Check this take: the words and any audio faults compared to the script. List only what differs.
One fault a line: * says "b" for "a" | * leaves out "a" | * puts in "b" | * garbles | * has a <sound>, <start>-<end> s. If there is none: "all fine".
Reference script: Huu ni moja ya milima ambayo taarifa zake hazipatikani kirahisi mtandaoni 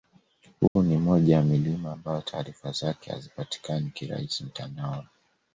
* has a dropout, 0.7-0.8 s